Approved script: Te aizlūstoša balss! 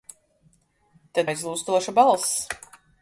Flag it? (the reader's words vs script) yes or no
no